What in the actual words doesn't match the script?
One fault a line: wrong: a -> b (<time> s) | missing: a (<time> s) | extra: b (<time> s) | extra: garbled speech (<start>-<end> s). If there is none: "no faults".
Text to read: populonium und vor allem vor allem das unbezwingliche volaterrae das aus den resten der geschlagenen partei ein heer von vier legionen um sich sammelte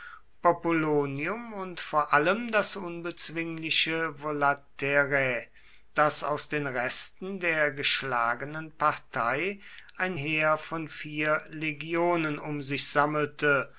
missing: vor allem (2.5 s)